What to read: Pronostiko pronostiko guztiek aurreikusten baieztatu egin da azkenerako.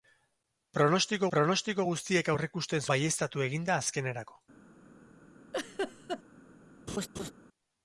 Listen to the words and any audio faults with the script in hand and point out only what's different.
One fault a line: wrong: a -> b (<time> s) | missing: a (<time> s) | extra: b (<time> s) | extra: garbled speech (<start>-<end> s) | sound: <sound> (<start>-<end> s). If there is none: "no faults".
sound: laugh (5.5-6.2 s)
sound: laugh (6.9-7.3 s)